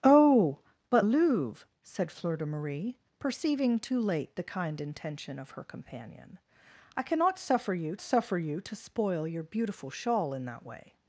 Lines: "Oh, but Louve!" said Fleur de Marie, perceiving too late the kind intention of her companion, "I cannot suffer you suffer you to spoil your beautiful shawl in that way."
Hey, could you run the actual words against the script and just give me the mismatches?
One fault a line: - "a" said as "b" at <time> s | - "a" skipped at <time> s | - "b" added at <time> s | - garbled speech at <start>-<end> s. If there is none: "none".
none